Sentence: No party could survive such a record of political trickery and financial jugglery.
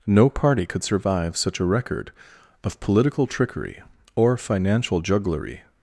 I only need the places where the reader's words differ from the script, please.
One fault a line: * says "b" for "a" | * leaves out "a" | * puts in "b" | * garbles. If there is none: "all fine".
* says "or" for "and"